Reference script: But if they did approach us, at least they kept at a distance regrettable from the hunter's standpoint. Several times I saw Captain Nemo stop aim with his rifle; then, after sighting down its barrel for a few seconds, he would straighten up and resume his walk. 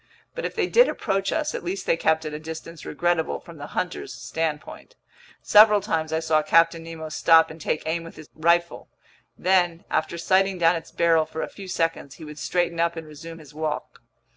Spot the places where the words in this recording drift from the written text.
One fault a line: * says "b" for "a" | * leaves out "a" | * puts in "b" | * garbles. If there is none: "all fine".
* puts in "and take"